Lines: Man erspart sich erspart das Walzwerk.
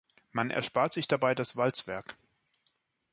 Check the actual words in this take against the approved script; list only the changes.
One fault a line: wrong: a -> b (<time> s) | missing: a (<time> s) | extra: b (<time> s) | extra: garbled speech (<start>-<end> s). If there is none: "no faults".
wrong: erspart -> dabei (1.1 s)